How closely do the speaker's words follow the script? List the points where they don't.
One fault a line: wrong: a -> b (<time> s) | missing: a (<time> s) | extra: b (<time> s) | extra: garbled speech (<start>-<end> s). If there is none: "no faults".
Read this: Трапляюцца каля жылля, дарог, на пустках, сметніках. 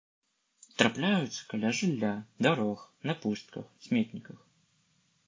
no faults